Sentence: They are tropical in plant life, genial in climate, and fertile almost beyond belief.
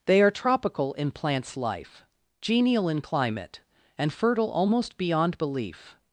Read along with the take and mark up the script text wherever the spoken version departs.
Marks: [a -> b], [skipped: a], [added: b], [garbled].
They are tropical in [plant -> plants] life, genial in climate, and fertile almost beyond belief.